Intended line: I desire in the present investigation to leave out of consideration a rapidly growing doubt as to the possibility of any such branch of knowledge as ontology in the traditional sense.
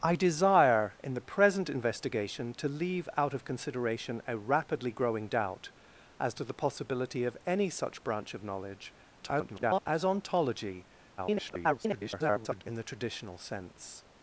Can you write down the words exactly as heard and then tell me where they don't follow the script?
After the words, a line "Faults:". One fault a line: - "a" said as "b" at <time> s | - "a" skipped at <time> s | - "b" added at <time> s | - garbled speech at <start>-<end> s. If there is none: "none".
I desire in the present investigation to leave out of consideration a rapidly growing doubt as to the possibility of any such branch of knowledge [garbled] as ontology [garbled] in the traditional sense.
Faults:
- garbled speech at 9.2-9.8 s
- garbled speech at 11.2-12.6 s